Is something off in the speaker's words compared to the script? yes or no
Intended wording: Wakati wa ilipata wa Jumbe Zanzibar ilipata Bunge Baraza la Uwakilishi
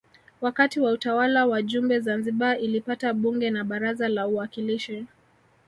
yes